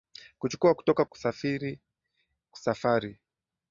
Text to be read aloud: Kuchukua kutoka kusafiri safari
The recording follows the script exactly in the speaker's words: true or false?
true